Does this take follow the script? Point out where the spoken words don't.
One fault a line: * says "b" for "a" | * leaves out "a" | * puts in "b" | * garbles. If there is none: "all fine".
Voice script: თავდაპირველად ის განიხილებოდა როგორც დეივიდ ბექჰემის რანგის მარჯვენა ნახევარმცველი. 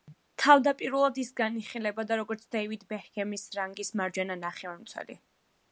all fine